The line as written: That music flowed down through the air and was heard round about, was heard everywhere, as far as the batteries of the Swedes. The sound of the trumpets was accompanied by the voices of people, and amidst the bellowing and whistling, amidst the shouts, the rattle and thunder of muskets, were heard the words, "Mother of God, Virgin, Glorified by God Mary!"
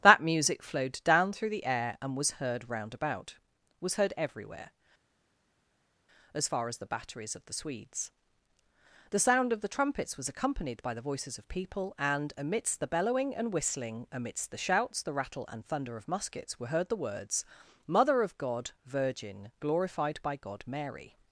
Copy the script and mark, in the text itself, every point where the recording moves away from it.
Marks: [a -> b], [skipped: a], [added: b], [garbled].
That music flowed down through the air and was heard round about, was heard everywhere, as far as the batteries of the Swedes. The sound of the trumpets was accompanied by the voices of people, and amidst the bellowing and whistling, amidst the shouts, the rattle and thunder of muskets, were heard the words, "Mother of God, Virgin, Glorified by God Mary!"